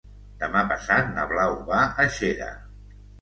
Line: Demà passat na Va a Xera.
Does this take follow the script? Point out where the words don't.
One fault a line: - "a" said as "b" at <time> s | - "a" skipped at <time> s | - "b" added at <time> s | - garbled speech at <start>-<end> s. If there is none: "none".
- "Blau" added at 1.3 s